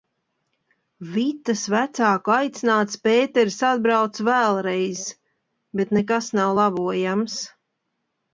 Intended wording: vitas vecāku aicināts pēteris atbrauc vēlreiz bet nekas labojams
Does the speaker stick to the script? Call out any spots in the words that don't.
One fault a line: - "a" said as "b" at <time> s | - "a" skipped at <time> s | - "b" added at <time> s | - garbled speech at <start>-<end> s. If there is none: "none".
- "nav" added at 6.4 s